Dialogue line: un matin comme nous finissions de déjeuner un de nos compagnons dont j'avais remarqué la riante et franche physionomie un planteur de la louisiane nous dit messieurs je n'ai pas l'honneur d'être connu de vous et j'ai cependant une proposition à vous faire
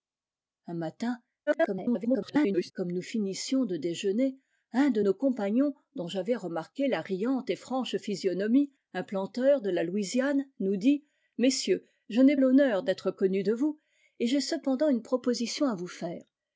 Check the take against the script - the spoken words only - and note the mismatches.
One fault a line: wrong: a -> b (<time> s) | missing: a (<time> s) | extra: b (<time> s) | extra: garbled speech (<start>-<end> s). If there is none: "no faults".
extra: garbled speech (1.5-2.7 s)
missing: pas (12.4 s)